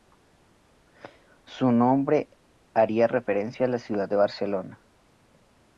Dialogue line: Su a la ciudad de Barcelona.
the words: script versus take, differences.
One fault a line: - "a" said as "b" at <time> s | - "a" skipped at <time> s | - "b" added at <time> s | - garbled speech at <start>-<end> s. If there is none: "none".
- "nombre haría referencia" added at 1.7 s